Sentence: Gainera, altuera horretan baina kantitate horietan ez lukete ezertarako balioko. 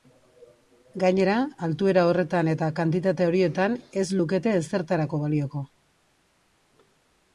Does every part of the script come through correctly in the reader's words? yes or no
no